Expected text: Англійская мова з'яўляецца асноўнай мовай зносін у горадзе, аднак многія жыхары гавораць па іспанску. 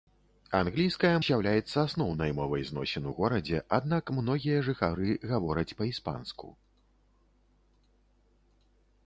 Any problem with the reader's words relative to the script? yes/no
yes